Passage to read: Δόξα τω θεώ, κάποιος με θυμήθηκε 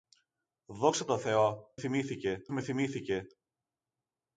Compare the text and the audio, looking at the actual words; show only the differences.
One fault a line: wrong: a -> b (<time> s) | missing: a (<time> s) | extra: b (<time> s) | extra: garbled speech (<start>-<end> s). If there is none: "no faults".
wrong: κάποιος -> θυμήθηκε (1.8 s)